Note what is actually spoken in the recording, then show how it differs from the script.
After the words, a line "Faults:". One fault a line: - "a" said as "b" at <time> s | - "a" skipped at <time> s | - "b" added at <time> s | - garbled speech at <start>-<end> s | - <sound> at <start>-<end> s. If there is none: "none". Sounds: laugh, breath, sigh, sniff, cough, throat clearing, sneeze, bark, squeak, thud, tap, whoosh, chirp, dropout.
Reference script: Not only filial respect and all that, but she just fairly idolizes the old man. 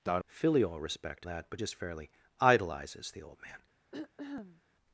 Not filial respect that, but just fairly idolizes the old man.
Faults:
- "only" skipped at 0.2 s
- "and all" skipped at 1.3 s
- "she" skipped at 1.6 s
- throat clearing at 3.9-4.6 s